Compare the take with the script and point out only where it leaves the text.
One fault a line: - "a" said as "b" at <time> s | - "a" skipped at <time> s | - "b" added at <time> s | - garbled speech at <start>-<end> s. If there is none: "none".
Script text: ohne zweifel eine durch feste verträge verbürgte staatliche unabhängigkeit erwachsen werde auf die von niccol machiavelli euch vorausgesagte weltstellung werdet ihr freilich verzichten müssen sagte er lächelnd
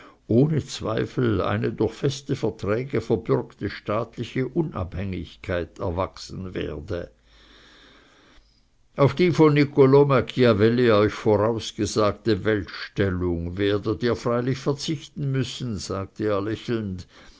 none